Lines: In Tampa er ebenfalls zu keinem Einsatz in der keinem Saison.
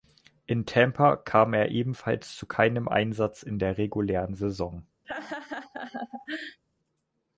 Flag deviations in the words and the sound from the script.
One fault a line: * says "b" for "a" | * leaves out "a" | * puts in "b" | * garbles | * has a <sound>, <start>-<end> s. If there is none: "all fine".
* puts in "kam"
* says "regulären" for "keinem"
* has a laugh, 5.0-6.6 s